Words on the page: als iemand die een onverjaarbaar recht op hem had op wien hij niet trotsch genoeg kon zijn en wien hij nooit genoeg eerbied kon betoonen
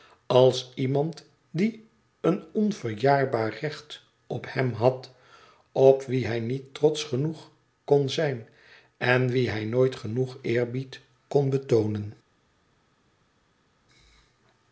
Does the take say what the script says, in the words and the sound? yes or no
yes